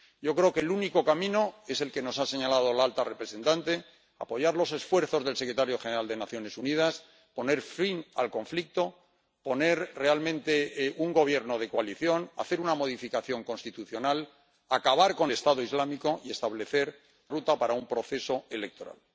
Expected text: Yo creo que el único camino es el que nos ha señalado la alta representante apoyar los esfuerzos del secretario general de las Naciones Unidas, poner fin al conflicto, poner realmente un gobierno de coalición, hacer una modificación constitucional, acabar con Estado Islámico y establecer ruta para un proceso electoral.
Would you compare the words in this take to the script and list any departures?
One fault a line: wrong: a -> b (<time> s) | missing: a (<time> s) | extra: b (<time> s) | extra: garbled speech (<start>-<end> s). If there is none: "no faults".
no faults